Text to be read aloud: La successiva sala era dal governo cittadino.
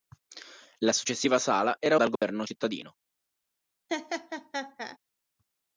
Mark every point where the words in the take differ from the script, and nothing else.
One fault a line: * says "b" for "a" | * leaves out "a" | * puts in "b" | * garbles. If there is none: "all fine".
all fine